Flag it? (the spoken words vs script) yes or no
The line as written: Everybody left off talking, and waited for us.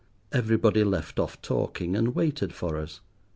no